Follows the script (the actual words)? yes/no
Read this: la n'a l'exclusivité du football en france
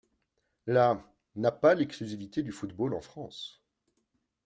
no